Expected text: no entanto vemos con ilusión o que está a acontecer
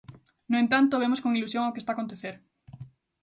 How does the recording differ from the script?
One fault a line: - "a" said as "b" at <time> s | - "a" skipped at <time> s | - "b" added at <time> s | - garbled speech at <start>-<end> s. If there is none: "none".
none